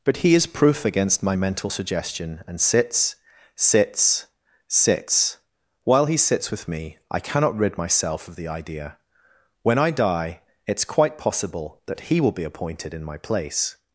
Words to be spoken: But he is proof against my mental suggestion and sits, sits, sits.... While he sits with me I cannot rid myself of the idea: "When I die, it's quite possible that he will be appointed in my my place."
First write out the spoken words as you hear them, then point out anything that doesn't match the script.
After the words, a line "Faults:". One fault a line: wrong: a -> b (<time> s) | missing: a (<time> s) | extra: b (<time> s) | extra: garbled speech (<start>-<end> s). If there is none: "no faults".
But he is proof against my mental suggestion and sits, sits, sits.... While he sits with me I cannot rid myself of the idea: "When I die, it's quite possible that he will be appointed in my place."
Faults:
missing: my (13.2 s)